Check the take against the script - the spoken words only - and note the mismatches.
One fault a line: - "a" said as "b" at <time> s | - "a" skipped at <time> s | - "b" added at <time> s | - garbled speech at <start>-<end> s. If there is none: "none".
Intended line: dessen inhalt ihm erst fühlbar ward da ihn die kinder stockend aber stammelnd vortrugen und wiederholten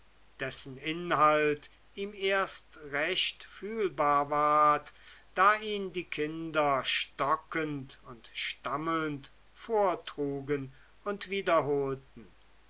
- "recht" added at 2.8 s
- "aber" said as "und" at 8.0 s